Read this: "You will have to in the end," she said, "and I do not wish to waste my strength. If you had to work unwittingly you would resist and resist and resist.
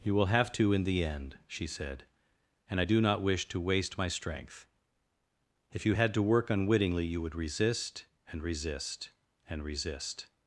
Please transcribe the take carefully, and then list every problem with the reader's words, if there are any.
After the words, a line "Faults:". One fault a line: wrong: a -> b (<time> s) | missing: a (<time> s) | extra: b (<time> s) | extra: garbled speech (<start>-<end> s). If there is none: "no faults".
"You will have to in the end," she said, "and I do not wish to waste my strength. If you had to work unwittingly you would resist and resist and resist.
Faults:
no faults